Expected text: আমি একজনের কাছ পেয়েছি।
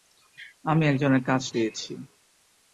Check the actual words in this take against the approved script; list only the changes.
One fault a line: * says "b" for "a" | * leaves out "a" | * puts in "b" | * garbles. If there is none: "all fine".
all fine